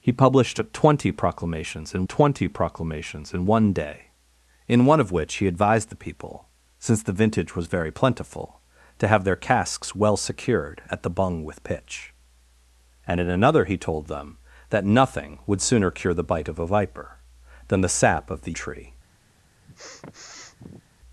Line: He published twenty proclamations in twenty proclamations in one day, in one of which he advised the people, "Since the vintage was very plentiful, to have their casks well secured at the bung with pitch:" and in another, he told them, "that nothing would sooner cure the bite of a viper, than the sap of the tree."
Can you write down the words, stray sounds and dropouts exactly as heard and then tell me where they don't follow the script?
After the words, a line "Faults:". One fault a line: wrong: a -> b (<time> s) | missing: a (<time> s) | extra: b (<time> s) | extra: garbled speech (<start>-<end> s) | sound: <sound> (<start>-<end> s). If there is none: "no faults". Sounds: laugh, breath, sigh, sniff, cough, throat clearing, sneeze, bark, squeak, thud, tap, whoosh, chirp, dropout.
He published twenty proclamations in twenty proclamations in one day, in one of which he advised the people, "Since the vintage was very plentiful, to have their casks well secured at the bung with pitch:" and in another, he told them, "that nothing would sooner cure the bite of a viper, than the sap of the tree."
Faults:
sound: sniff (19.6-20.8 s)